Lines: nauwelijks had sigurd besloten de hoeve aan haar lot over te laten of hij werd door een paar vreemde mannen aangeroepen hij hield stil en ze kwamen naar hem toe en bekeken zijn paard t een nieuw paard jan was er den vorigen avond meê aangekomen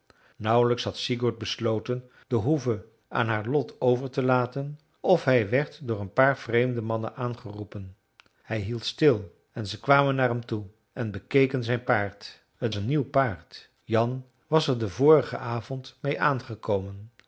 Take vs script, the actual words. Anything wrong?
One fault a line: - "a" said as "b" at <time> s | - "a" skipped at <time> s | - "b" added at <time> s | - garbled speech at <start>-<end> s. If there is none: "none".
none